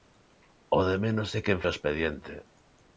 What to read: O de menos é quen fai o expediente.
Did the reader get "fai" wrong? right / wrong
wrong